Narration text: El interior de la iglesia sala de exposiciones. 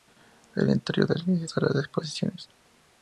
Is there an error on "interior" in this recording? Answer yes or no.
no